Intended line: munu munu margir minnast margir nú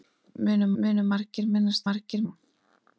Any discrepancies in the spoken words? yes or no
no